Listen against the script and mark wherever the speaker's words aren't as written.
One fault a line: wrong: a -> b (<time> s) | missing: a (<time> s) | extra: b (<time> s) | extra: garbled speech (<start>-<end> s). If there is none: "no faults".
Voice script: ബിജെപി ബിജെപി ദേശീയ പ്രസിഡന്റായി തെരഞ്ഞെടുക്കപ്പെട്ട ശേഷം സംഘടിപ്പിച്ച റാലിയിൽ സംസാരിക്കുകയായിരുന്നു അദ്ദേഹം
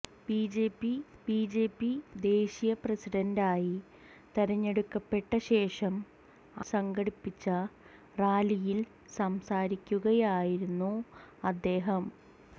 no faults